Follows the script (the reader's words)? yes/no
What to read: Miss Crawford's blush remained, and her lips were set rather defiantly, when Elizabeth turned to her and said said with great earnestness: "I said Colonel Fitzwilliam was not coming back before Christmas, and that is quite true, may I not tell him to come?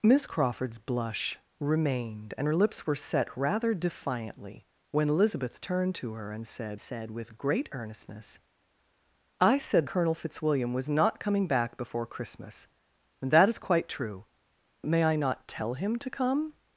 yes